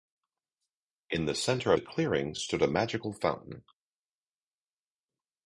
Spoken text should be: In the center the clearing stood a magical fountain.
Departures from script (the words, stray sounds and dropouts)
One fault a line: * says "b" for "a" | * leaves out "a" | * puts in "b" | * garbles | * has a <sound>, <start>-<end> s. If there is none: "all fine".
all fine